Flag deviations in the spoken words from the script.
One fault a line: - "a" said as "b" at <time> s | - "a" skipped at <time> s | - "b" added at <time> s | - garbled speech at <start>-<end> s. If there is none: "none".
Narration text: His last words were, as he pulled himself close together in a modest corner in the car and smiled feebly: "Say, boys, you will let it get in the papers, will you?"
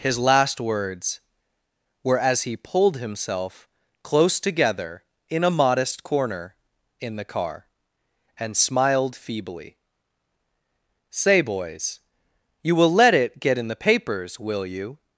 none